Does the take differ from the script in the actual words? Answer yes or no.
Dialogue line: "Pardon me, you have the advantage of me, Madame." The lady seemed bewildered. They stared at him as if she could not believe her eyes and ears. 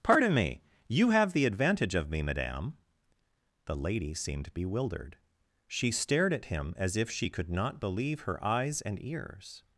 yes